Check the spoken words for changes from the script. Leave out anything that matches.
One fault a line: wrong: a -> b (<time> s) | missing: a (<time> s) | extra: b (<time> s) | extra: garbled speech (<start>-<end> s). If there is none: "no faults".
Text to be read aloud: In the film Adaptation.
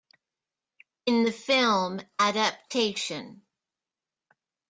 no faults